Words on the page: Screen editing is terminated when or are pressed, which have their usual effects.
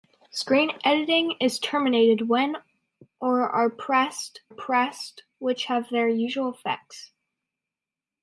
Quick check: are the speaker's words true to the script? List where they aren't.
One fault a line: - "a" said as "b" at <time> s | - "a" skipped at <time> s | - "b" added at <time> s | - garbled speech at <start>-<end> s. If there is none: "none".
- "pressed" added at 4.5 s